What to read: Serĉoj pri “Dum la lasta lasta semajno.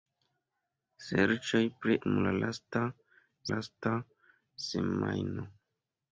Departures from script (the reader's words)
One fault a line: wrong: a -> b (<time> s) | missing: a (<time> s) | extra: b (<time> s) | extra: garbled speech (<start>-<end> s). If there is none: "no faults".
no faults